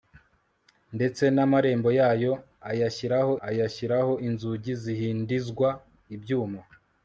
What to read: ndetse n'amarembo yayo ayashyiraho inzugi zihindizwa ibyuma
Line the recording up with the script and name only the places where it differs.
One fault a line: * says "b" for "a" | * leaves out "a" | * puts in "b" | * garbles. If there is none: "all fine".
* puts in "ayashyiraho"